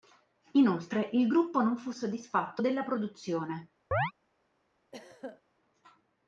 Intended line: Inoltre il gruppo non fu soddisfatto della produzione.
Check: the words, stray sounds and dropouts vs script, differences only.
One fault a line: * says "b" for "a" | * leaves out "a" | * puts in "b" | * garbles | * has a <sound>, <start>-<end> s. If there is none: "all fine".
* has a chirp, 3.9-4.1 s
* has a throat clearing, 4.9-5.4 s